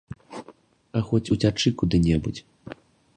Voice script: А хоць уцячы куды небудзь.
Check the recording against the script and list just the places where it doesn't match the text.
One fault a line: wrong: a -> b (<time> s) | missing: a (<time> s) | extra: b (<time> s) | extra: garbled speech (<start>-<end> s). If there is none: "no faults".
no faults